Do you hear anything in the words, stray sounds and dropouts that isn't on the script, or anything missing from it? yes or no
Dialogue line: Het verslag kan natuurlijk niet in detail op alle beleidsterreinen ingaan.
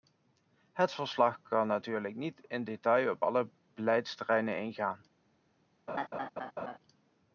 yes